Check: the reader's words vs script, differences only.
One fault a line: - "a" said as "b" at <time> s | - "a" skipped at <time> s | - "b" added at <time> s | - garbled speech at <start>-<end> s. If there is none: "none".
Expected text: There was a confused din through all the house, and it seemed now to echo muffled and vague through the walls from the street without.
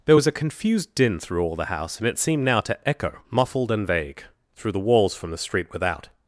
none